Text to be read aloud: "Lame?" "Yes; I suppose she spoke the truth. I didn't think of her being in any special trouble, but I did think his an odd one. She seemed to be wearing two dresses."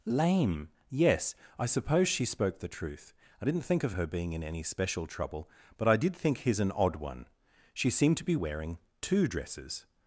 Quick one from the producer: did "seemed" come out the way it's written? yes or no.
yes